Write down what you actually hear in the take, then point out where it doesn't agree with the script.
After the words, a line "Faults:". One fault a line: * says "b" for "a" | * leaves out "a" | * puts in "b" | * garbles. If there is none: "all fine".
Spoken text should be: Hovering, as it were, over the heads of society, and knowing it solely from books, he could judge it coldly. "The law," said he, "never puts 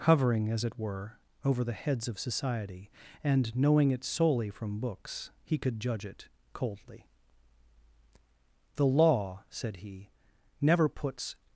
Hovering, as it were, over the heads of society, and knowing it solely from books, he could judge it coldly. "The law," said he, "never puts
Faults:
all fine